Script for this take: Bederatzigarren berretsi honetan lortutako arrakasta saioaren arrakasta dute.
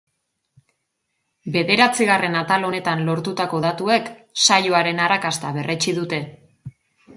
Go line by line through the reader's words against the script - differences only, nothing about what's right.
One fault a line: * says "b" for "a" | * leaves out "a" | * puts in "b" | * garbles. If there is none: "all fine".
* says "atal" for "berretsi"
* says "datuek" for "arrakasta"
* puts in "berretsi"